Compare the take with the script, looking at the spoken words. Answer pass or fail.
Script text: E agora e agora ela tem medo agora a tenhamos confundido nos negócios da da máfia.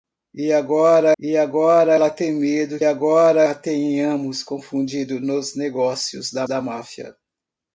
pass